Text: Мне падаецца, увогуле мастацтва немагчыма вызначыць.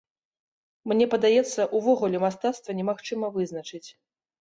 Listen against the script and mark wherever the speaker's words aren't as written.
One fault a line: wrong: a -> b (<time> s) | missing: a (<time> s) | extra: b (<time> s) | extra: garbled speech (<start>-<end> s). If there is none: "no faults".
no faults